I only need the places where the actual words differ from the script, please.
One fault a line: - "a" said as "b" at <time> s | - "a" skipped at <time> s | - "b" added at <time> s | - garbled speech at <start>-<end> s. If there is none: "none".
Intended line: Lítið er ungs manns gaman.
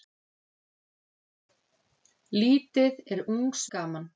- "manns" skipped at 3.7 s